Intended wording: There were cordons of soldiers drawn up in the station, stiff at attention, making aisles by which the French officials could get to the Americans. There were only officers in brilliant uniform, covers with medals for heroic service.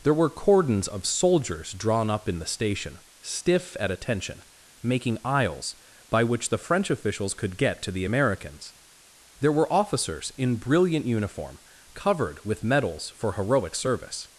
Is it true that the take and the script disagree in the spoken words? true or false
true